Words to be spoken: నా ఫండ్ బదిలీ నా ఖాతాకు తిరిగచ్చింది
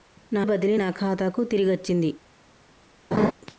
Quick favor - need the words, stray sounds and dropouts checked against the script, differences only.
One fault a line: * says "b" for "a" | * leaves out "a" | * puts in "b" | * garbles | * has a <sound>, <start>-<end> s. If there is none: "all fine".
* leaves out "ఫండ్"
* has a laugh, 3.1-3.3 s